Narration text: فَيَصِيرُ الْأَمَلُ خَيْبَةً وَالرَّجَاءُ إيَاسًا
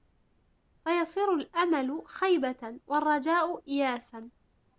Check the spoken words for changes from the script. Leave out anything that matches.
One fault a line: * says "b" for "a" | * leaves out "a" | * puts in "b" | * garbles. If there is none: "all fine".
all fine